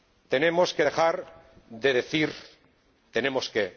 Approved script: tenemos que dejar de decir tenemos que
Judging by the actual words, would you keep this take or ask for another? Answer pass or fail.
pass